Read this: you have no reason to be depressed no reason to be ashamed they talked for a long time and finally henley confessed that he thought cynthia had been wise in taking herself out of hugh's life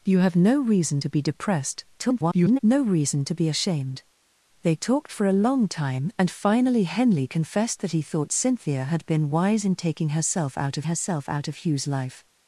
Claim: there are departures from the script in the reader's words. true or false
true